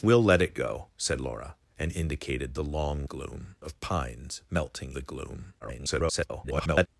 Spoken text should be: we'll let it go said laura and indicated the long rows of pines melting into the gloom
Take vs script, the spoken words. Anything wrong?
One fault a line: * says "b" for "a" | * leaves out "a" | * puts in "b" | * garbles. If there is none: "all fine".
* says "gloom" for "rows"
* leaves out "into"
* garbles